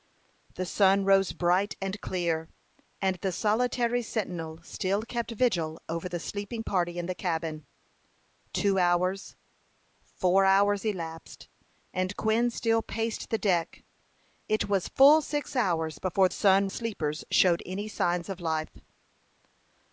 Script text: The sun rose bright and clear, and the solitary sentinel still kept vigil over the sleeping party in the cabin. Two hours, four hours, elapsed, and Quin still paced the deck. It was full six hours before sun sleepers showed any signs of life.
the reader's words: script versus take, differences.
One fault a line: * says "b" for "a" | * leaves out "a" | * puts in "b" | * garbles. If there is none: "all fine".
all fine